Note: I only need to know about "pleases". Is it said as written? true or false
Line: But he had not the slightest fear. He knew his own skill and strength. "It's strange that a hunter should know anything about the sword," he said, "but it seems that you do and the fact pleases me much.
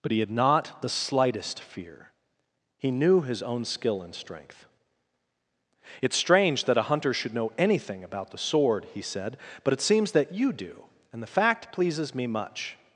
true